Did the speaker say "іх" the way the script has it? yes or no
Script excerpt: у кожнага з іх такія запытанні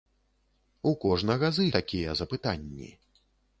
no